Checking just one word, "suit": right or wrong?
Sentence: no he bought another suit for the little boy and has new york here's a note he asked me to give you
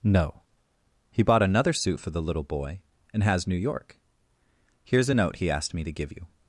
right